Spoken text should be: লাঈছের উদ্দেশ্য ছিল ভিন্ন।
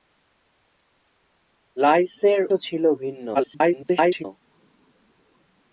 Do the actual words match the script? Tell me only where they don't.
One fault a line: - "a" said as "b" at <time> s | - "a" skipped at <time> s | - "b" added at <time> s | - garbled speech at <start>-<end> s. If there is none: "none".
- "উদ্দেশ্য" skipped at 2.4 s
- garbled speech at 3.3-4.2 s